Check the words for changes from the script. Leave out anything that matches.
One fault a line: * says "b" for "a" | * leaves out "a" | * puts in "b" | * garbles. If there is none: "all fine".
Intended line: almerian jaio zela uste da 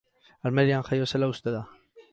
all fine